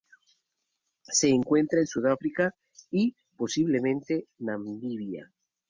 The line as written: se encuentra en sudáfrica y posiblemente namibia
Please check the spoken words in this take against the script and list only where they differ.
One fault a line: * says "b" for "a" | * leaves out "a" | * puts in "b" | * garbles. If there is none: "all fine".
all fine